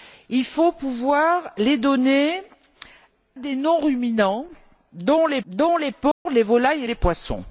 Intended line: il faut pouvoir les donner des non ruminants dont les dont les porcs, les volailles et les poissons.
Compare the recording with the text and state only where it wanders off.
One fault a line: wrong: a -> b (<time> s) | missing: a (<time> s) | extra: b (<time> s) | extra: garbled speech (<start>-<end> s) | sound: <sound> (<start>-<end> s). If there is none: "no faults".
sound: dropout (6.1-6.3 s)